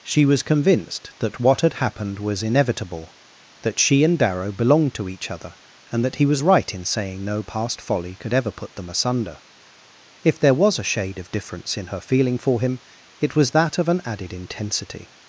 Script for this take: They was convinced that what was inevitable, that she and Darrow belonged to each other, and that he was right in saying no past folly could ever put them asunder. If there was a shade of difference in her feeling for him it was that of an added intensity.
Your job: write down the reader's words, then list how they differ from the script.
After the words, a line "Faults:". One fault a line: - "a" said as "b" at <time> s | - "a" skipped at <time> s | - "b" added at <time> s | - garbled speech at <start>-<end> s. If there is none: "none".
She was convinced that what had happened was inevitable, that she and Darrow belonged to each other, and that he was right in saying no past folly could ever put them asunder. If there was a shade of difference in her feeling for him it was that of an added intensity.
Faults:
- "They" said as "She" at 0.0 s
- "had happened" added at 1.6 s